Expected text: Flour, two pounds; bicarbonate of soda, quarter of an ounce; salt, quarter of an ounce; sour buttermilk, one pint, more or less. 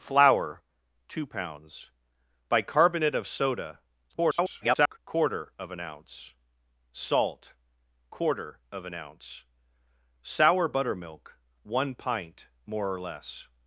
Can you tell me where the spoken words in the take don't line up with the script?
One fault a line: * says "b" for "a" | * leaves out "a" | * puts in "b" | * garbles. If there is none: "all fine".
* garbles